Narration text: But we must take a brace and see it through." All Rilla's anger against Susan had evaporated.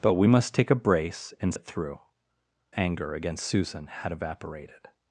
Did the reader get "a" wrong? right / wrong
right